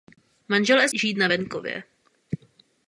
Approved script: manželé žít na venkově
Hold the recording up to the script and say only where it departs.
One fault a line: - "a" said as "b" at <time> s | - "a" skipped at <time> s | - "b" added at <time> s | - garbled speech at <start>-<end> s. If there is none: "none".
none